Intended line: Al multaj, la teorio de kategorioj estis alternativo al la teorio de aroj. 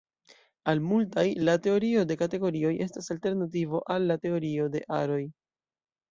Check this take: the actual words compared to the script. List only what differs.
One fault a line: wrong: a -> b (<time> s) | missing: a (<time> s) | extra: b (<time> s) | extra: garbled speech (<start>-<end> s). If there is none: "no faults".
wrong: estis -> estas (2.9 s)